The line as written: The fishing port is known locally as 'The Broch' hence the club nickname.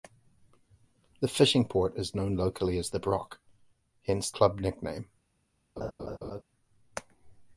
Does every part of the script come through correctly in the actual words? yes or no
no